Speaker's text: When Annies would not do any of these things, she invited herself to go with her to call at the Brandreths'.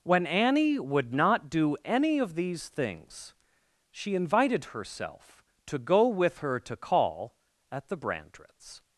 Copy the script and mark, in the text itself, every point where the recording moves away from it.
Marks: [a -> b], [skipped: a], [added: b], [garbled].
When [Annies -> Annie] would not do any of these things, she invited herself to go with her to call at the Brandreths'.